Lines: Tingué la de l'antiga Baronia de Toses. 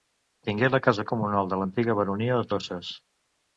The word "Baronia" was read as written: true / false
true